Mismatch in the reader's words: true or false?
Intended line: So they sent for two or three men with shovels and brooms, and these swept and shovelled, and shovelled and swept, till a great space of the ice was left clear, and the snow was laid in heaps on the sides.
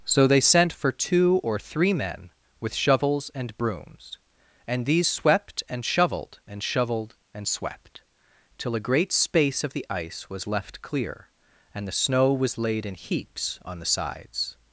false